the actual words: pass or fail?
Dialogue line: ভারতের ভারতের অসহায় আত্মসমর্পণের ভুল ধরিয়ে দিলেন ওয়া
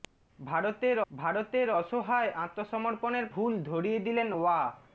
pass